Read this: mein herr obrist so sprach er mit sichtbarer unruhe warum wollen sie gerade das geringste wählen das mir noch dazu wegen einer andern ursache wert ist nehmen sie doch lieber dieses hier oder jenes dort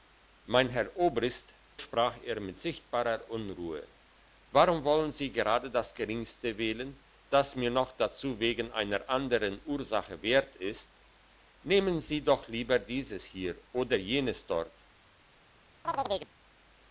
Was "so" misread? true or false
true